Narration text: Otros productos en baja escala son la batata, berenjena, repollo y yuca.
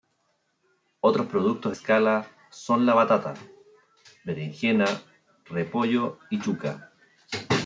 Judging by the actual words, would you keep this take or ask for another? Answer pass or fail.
fail